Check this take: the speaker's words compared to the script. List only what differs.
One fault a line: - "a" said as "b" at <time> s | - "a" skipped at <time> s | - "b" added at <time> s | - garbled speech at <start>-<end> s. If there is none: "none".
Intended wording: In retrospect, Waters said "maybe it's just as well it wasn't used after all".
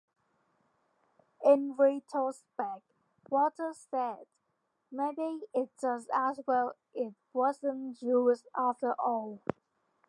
none